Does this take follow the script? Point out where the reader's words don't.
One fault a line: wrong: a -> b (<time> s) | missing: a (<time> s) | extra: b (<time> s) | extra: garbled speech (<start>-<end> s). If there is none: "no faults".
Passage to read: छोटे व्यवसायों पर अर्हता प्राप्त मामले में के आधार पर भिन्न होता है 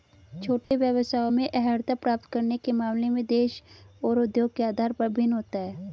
wrong: पर -> में (1.3 s)
extra: करने के (2.3 s)
extra: देश और उद्योग (3.3 s)